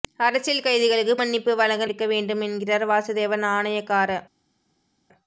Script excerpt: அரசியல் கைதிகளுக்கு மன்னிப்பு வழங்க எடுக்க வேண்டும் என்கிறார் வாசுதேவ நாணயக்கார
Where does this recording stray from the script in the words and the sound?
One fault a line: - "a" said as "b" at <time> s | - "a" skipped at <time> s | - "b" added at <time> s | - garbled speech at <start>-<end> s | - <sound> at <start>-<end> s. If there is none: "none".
none